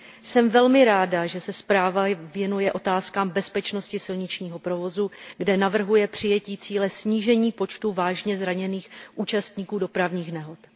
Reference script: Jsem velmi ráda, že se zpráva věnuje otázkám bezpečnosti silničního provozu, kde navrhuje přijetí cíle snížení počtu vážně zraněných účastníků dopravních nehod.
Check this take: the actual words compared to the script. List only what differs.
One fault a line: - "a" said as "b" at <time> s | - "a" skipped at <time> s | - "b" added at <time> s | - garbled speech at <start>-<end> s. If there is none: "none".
none